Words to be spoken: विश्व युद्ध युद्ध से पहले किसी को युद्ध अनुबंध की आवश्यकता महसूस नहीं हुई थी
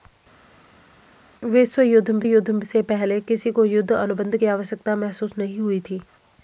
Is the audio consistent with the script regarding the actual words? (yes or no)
yes